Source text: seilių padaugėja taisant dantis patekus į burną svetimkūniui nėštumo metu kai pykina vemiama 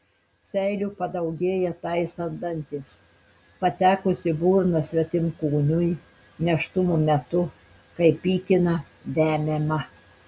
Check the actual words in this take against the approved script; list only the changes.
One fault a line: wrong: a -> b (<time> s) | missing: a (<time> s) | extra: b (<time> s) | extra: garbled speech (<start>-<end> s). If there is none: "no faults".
no faults